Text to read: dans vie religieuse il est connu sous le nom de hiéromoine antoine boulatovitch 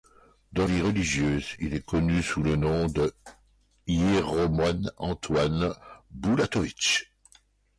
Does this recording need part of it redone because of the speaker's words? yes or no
no